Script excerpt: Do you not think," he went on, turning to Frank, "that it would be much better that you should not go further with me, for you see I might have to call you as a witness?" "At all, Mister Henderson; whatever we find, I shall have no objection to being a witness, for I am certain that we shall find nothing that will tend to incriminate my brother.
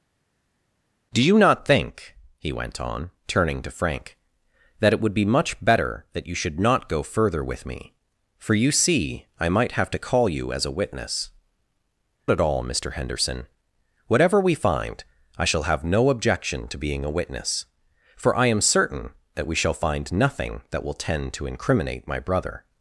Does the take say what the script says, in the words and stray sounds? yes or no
yes